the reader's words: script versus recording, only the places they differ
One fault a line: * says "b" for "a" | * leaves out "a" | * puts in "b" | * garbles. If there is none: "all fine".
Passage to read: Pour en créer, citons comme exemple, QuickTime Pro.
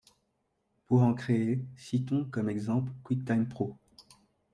all fine